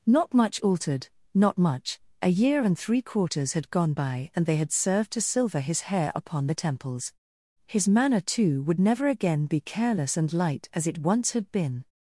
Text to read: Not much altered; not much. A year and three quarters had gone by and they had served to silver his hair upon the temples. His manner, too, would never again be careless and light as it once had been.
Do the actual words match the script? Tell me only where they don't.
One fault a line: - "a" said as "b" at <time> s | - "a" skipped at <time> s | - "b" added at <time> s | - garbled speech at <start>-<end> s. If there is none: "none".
none